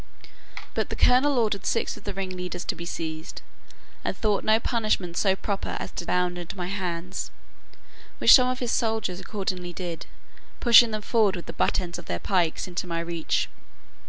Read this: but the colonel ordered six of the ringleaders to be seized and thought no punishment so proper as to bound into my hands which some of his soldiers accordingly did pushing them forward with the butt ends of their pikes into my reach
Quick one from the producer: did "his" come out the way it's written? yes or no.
yes